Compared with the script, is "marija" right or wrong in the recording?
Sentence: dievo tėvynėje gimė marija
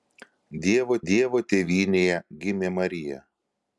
right